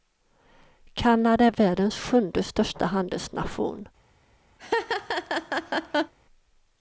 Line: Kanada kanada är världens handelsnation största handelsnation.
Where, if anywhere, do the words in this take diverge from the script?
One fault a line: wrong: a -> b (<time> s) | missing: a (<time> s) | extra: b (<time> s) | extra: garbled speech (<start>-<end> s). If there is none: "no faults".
missing: kanada (1.4 s)
wrong: handelsnation -> sjunde (1.9 s)